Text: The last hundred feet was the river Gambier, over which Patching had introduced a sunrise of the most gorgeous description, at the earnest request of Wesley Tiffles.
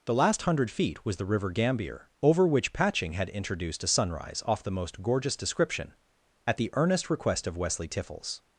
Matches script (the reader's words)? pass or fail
fail